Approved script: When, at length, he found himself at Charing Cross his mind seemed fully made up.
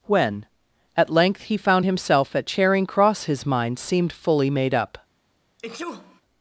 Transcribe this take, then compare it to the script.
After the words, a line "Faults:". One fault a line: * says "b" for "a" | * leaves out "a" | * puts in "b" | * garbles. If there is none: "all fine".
When, at length, he found himself at Charing Cross his mind seemed fully made up.
Faults:
all fine